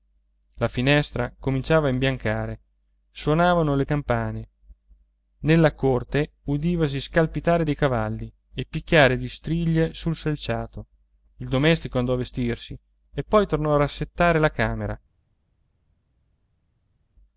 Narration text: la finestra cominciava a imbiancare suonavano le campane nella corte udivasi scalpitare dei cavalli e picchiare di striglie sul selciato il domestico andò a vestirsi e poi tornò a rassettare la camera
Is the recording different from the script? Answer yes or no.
no